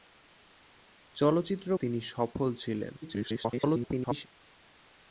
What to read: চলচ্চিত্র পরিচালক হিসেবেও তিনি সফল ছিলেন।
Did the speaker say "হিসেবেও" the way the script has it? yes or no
no